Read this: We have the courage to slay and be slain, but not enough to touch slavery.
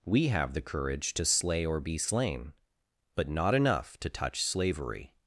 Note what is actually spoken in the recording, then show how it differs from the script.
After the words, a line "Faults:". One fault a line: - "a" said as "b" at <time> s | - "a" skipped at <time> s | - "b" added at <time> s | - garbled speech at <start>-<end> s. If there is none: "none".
We have the courage to slay or be slain, but not enough to touch slavery.
Faults:
- "and" said as "or" at 1.7 s